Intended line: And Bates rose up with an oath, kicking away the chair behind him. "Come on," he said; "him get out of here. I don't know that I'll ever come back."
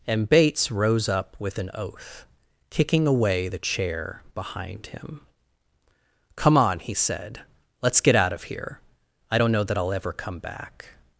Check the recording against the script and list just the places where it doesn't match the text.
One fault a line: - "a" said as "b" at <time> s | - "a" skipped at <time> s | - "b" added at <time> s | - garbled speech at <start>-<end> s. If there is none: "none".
- "him" said as "let's" at 7.8 s